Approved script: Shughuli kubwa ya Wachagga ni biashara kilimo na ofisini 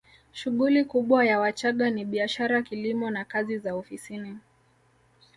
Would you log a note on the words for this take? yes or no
yes